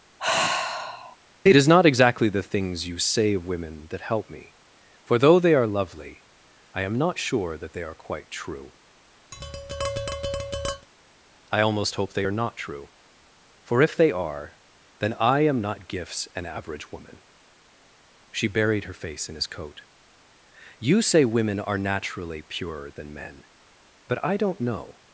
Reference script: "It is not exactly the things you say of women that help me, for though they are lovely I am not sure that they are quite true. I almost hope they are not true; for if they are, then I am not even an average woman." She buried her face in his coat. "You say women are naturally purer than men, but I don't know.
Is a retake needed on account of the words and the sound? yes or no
yes